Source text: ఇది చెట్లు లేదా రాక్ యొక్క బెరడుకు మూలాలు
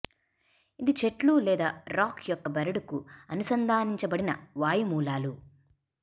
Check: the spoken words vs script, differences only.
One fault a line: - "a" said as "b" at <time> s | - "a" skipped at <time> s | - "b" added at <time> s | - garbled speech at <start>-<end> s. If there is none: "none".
- "అనుసంధానించబడిన వాయు" added at 3.3 s